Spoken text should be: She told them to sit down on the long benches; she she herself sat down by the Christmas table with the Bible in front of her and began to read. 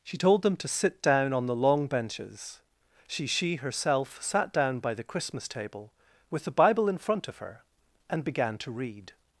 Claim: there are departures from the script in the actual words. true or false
false